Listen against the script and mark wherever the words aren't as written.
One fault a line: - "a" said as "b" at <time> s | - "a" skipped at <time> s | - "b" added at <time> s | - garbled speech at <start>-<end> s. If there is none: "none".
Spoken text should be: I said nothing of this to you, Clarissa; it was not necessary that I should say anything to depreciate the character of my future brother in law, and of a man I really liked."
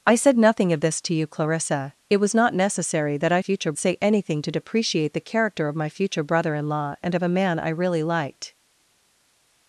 - "should" said as "future" at 3.4 s